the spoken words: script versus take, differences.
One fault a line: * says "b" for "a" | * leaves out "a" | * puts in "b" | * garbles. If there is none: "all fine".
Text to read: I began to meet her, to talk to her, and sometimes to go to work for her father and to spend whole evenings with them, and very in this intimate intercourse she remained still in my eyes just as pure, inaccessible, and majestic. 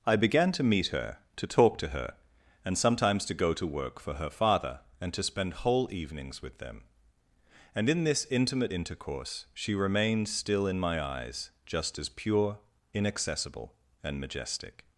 * leaves out "very"